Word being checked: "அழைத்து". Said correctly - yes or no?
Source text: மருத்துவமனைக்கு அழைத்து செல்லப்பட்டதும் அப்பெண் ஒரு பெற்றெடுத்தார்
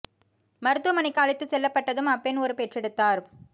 yes